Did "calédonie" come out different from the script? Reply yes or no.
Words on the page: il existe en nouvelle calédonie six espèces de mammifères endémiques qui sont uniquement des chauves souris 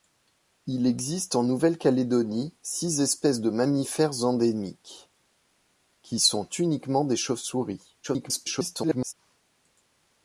no